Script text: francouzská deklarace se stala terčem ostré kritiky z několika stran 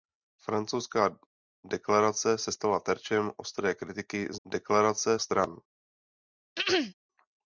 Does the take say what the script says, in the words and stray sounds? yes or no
no